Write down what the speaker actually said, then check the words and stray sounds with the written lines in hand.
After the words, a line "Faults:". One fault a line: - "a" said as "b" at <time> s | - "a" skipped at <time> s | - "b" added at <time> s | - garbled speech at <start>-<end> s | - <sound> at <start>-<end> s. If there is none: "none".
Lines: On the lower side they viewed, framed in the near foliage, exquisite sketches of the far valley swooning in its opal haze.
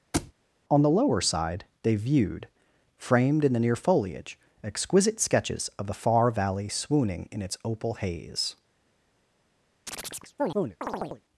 On the lower side they viewed, framed in the near foliage, exquisite sketches of the far valley swooning in its opal haze.
Faults:
- thud at 0.1-0.3 s
- chirp at 9.9-11.2 s